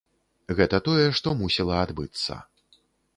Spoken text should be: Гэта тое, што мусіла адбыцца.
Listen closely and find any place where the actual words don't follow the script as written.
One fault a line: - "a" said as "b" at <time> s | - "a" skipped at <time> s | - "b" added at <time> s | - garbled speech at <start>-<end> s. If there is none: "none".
none